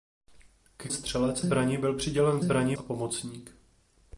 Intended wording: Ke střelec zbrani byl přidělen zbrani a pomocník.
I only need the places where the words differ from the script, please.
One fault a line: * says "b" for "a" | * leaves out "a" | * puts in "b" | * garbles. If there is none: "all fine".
all fine